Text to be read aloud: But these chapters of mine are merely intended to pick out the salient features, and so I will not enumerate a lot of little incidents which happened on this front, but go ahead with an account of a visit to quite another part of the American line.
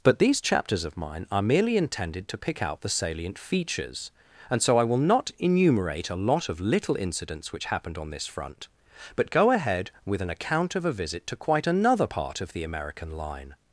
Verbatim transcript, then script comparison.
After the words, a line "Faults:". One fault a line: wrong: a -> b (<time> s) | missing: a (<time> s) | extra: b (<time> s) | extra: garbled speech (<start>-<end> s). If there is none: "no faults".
But these chapters of mine are merely intended to pick out the salient features, and so I will not enumerate a lot of little incidents which happened on this front, but go ahead with an account of a visit to quite another part of the American line.
Faults:
no faults